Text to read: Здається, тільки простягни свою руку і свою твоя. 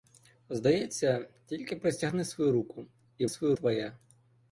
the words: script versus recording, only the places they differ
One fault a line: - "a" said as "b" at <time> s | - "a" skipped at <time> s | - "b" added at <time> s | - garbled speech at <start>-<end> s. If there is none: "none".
none